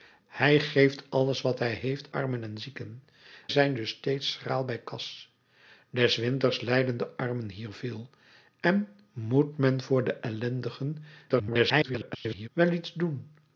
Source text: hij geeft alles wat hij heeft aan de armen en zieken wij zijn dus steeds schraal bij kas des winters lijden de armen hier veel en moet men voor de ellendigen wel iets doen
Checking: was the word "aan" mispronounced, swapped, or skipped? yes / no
yes